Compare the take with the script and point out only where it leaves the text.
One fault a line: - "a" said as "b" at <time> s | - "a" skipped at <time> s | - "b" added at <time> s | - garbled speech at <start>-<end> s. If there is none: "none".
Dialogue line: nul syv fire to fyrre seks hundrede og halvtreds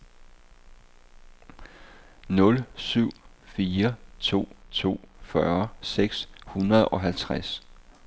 - "to" added at 4.7 s